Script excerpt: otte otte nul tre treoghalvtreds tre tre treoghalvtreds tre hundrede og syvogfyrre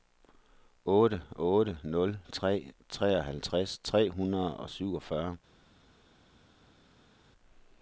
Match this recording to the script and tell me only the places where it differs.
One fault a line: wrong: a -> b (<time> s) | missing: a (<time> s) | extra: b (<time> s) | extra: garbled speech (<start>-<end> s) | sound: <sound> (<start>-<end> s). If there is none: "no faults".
missing: tre treoghalvtreds tre (4.1 s)